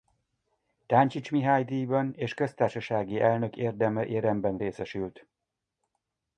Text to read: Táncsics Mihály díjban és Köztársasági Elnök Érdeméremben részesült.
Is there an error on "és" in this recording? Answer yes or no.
no